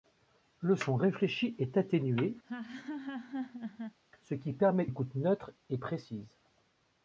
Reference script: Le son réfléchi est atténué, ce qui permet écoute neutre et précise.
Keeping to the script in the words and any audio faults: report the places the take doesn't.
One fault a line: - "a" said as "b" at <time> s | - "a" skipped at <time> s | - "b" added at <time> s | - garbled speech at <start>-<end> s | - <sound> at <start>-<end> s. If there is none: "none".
- laugh at 2.4-4.0 s